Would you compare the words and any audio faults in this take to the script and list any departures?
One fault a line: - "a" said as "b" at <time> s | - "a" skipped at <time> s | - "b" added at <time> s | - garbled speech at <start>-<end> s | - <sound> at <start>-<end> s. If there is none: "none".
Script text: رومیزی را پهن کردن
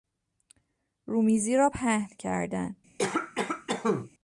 - cough at 3.0-4.1 s